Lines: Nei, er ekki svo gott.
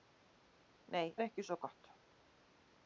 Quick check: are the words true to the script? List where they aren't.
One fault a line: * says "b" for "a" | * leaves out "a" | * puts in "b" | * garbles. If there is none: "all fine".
all fine